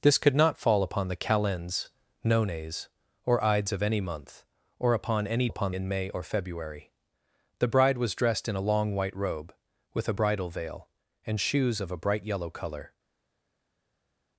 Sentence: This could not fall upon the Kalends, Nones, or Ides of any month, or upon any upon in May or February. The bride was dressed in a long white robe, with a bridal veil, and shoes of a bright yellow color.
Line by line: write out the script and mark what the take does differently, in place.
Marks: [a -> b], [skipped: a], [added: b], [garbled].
This could not fall upon the Kalends, Nones, or Ides of any month, or upon any upon in May or February. The bride was dressed in a long white robe, with a bridal veil, and shoes of a bright yellow color.